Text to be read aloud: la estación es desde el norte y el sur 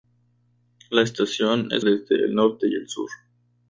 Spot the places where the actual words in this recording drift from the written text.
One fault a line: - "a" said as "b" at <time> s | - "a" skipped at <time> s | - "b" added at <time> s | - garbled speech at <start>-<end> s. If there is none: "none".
none